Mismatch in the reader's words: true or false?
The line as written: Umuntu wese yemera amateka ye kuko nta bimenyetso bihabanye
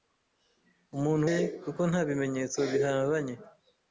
true